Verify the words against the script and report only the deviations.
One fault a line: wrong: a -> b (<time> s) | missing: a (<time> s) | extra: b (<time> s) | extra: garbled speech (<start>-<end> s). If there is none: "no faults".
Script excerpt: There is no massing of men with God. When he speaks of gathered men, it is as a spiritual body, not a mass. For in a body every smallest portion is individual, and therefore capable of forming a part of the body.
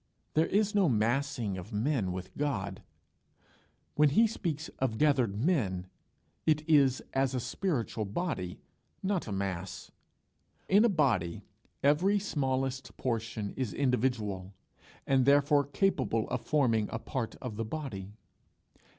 missing: For (9.9 s)